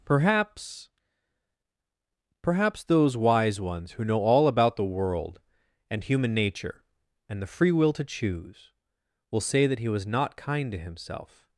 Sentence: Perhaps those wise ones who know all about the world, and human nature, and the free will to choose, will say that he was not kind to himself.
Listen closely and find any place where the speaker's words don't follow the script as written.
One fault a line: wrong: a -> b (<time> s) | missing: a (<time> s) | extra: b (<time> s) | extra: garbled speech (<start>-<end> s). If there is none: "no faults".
extra: perhaps (2.4 s)